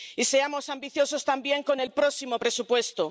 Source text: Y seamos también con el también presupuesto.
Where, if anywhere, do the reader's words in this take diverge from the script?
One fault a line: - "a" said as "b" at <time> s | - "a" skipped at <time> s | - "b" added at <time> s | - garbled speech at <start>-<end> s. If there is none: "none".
- "ambiciosos" added at 0.7 s
- "también" said as "próximo" at 2.0 s